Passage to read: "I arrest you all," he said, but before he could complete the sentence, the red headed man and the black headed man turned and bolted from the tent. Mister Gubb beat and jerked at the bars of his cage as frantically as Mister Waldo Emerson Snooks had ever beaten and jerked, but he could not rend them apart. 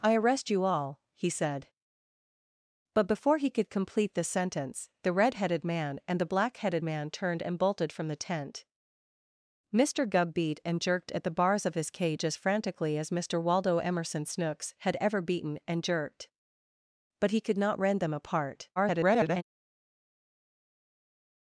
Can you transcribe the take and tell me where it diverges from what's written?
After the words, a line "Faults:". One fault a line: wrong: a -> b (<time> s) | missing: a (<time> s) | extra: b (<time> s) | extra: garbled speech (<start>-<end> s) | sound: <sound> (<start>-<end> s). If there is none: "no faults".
"I arrest you all," he said, but before he could complete the sentence, the red headed man and the black headed man turned and bolted from the tent. Mister Gubb beat and jerked at the bars of his cage as frantically as Mister Waldo Emerson Snooks had ever beaten and jerked, but he could not rend them apart. [garbled]
Faults:
extra: garbled speech (18.8-19.4 s)